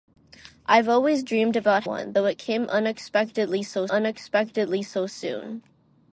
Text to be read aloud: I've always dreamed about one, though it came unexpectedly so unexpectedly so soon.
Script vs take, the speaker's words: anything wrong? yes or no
no